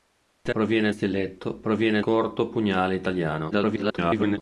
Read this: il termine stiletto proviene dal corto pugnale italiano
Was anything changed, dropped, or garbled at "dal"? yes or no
yes